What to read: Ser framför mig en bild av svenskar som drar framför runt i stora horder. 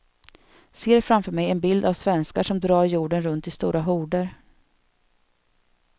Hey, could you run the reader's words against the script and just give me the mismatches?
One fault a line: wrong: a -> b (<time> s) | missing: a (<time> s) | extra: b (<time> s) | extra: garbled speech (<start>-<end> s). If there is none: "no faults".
wrong: framför -> jorden (2.9 s)